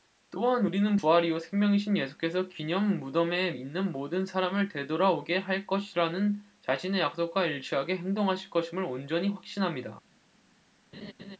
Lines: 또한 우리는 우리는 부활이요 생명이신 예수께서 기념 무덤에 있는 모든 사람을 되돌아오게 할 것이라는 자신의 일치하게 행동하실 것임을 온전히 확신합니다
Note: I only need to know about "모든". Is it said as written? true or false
true